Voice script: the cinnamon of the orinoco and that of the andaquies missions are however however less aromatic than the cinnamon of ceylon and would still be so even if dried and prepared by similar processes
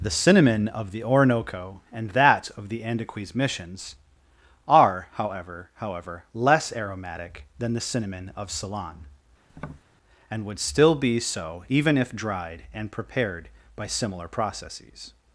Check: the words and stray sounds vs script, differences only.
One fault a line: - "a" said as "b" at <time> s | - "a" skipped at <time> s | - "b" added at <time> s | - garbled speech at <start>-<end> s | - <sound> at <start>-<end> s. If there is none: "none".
- tap at 9.5-9.8 s